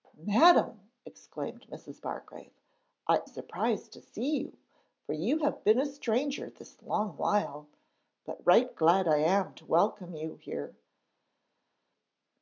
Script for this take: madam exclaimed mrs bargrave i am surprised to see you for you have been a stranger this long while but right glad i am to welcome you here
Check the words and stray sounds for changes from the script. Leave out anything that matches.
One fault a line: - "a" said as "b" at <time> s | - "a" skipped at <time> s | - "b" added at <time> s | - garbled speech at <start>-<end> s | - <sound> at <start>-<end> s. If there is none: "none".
- "am" skipped at 3.2 s